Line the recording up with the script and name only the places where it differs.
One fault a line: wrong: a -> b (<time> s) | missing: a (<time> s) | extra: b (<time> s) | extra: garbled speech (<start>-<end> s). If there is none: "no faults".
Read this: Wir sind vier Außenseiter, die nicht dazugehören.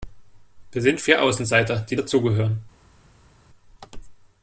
missing: nicht (1.9 s)